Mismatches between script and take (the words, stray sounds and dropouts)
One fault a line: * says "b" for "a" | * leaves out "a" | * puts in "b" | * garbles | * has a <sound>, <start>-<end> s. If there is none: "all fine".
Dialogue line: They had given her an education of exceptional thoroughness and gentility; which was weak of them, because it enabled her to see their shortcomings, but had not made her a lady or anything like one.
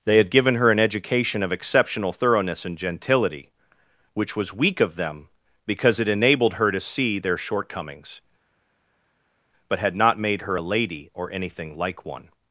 all fine